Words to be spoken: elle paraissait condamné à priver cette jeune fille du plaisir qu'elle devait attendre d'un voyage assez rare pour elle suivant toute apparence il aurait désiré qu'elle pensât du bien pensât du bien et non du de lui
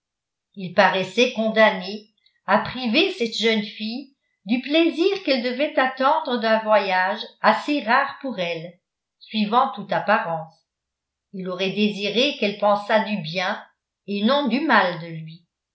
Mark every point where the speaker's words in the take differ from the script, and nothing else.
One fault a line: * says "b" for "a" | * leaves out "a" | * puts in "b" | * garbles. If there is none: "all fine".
* says "il" for "elle"
* leaves out "pensât du bien"
* puts in "mal"